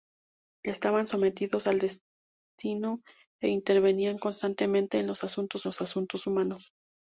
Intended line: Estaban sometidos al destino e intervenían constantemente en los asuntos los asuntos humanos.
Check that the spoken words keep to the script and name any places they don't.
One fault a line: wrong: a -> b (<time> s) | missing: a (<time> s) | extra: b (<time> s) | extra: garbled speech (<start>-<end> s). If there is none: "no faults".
no faults